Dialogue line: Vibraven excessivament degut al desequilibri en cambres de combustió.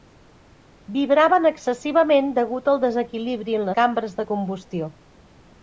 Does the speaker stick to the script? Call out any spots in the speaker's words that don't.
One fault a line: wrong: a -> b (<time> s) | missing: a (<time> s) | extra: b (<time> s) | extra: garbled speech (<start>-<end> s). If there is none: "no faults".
no faults